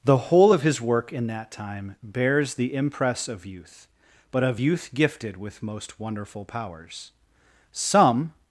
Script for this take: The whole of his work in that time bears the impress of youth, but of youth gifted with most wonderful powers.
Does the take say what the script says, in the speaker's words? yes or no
no